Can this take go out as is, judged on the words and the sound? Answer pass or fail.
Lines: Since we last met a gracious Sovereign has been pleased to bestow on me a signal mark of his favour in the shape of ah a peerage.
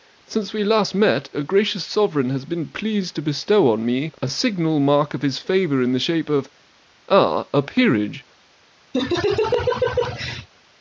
fail